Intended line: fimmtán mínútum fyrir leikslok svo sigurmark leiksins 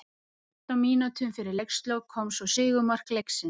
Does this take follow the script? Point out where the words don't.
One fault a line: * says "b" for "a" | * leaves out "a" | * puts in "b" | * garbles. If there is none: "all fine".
* puts in "kom"